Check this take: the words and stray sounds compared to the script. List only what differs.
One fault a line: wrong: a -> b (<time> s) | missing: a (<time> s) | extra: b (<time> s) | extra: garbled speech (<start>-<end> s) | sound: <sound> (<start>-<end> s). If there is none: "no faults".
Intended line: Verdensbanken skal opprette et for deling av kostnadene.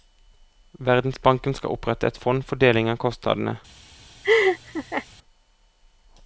extra: fond (2.2 s)
sound: laugh (4.2-5.1 s)